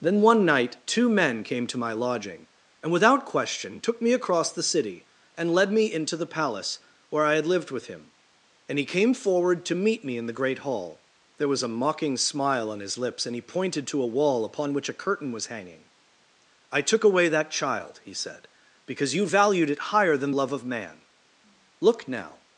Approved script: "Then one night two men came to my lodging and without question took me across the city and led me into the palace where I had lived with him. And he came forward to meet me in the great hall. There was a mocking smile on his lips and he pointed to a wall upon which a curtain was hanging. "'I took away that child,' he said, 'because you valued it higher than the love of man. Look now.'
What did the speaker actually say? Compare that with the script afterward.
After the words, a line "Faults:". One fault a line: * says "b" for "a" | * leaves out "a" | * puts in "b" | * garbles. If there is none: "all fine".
"Then one night two men came to my lodging and without question took me across the city and led me into the palace where I had lived with him. And he came forward to meet me in the great hall. There was a mocking smile on his lips and he pointed to a wall upon which a curtain was hanging. "'I took away that child,' he said, 'because you valued it higher than love of man. Look now.'
Faults:
* leaves out "the"